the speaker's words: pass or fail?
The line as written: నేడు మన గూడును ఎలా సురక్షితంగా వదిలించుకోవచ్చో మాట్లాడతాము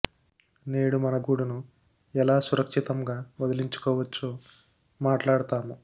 pass